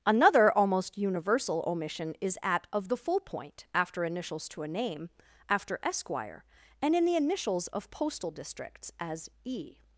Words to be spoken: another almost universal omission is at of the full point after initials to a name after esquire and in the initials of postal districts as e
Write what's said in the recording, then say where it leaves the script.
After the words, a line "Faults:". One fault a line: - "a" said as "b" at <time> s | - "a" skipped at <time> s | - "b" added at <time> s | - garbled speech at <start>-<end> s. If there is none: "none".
another almost universal omission is at of the full point after initials to a name after esquire and in the initials of postal districts as e
Faults:
none